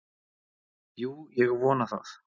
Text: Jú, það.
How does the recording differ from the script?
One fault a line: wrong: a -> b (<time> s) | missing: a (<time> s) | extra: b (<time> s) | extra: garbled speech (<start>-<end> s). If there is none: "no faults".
extra: ég vona (1.4 s)